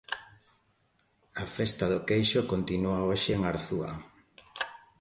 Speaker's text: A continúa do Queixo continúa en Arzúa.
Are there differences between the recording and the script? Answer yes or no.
yes